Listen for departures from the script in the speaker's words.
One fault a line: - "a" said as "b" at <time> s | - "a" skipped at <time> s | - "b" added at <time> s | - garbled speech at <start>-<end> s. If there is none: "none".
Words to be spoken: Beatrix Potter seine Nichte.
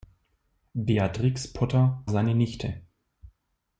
none